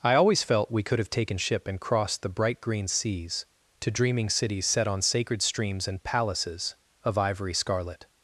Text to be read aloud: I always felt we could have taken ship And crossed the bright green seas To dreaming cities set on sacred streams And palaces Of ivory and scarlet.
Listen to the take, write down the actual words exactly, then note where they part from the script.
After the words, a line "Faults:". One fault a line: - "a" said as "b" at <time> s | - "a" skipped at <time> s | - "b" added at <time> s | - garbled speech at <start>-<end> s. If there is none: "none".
I always felt we could have taken ship And crossed the bright green seas To dreaming cities set on sacred streams And palaces Of ivory scarlet.
Faults:
- "and" skipped at 7.5 s